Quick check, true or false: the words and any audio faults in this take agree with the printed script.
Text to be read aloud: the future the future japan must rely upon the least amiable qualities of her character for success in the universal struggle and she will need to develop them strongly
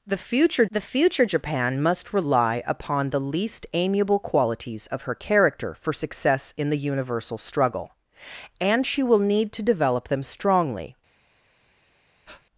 false